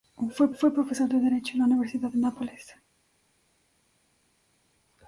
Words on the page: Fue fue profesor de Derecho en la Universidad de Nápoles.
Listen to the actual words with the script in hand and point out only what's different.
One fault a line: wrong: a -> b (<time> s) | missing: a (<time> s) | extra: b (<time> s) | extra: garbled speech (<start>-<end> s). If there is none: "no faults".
no faults